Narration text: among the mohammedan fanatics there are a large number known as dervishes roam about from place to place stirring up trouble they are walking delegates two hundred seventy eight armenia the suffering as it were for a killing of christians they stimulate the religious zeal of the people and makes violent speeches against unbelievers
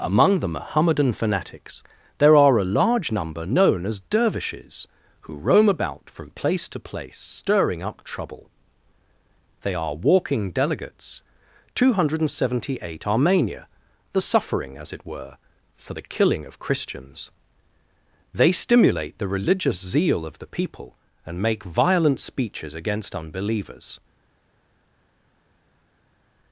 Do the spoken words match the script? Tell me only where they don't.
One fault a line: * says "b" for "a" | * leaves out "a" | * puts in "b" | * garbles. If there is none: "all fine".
* puts in "who"
* says "the" for "a"
* says "make" for "makes"